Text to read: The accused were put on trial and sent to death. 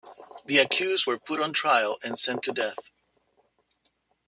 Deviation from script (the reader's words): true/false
false